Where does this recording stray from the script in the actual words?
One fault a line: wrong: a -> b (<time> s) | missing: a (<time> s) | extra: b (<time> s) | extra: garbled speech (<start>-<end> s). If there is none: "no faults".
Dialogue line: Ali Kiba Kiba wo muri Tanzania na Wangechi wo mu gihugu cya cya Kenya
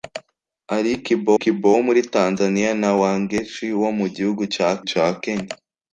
no faults